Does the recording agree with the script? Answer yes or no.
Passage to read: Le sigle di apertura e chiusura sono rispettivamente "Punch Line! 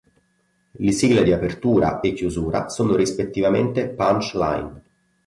yes